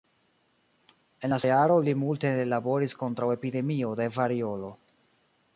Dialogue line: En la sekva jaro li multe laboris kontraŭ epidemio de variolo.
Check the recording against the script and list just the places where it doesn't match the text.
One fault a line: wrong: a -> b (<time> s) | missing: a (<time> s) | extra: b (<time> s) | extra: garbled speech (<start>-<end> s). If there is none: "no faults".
missing: sekva (1.4 s)